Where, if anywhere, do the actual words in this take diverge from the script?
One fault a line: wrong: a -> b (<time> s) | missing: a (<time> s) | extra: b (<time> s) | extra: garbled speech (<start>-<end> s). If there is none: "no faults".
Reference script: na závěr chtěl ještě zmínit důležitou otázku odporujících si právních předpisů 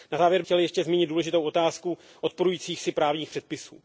no faults